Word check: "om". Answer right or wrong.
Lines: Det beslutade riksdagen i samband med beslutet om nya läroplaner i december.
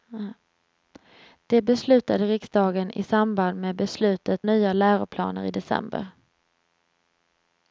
wrong